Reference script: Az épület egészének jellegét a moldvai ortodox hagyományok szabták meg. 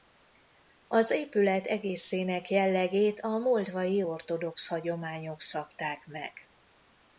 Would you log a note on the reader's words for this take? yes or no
no